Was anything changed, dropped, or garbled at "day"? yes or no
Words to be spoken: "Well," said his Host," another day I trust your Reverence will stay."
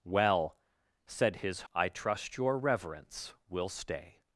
yes